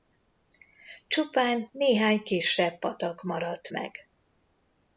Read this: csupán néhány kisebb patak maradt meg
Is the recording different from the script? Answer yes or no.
no